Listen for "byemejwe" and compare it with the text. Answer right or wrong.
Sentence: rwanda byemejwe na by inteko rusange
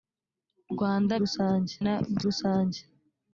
wrong